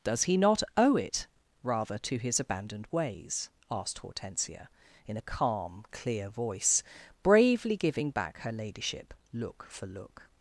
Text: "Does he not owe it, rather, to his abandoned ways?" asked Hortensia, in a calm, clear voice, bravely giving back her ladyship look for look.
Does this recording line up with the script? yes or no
yes